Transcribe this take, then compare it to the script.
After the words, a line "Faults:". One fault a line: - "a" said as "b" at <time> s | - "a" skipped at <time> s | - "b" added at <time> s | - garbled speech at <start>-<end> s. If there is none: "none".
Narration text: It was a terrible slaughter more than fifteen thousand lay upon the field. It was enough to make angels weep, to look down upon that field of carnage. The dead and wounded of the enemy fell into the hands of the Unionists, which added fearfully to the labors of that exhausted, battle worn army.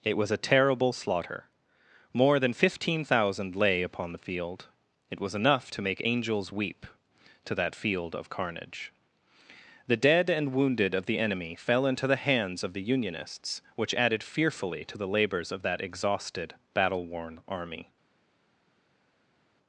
It was a terrible slaughter more than fifteen thousand lay upon the field. It was enough to make angels weep, to that field of carnage. The dead and wounded of the enemy fell into the hands of the Unionists, which added fearfully to the labors of that exhausted, battle worn army.
Faults:
- "look down upon" skipped at 7.5 s